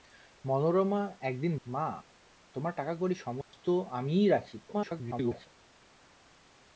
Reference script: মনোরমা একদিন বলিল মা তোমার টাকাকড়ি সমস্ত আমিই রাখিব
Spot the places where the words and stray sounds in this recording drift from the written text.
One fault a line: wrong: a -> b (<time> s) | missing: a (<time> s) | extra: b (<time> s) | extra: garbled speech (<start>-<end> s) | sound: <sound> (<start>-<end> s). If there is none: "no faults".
missing: বলিল (1.5 s)
sound: dropout (3.4-3.5 s)
extra: garbled speech (4.7-5.5 s)